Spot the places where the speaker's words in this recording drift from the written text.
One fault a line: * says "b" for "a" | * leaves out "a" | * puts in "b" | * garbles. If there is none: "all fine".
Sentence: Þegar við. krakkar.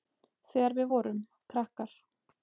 * puts in "vorum"